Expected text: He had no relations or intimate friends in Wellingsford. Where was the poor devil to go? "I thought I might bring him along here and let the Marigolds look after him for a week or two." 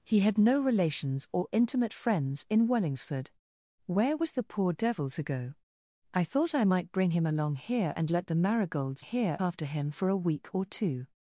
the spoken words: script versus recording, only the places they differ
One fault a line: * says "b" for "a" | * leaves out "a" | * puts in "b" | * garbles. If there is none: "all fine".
* says "here" for "look"